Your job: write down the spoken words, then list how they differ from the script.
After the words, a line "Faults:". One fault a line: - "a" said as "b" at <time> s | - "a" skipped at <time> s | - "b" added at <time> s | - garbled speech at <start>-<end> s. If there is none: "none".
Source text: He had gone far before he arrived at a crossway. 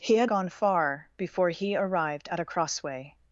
He had gone far before he arrived at a crossway.
Faults:
none